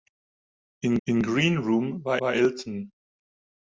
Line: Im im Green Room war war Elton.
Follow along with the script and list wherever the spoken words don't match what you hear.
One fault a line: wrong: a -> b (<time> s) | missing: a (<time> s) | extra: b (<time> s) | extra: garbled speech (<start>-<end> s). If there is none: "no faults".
no faults